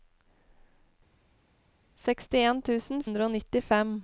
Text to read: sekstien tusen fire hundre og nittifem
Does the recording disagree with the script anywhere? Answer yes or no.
yes